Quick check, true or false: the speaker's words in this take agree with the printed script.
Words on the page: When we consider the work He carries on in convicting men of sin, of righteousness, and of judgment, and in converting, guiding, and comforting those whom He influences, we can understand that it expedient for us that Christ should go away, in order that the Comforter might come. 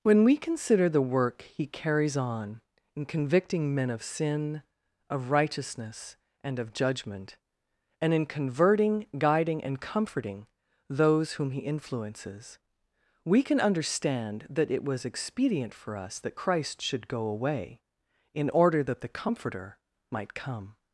false